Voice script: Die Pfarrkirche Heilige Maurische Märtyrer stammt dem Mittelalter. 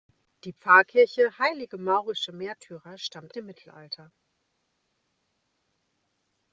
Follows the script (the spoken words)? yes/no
yes